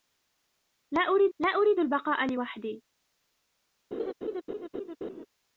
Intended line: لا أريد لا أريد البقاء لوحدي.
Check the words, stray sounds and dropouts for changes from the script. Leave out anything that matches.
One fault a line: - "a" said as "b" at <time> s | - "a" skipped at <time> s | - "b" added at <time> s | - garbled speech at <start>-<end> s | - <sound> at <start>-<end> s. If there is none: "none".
- laugh at 3.9-5.3 s